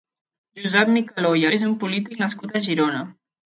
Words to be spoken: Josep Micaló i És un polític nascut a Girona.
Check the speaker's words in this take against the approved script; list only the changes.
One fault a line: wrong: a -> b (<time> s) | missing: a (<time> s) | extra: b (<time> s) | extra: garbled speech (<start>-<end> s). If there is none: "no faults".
no faults